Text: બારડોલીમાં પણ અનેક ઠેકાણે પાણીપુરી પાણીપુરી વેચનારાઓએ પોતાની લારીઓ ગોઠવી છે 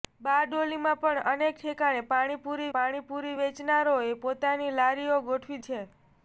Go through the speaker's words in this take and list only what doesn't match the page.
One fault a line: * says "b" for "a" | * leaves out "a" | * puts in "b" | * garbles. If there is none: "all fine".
all fine